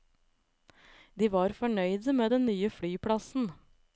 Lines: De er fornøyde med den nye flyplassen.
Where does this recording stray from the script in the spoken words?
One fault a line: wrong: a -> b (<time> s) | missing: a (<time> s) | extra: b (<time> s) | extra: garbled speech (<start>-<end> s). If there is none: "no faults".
wrong: er -> var (1.3 s)